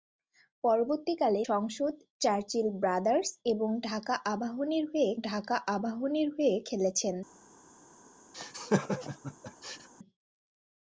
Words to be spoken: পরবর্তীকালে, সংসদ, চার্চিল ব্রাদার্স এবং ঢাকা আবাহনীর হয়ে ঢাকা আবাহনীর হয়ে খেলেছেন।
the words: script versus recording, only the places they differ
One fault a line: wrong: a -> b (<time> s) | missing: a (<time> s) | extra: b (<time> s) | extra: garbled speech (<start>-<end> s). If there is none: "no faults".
no faults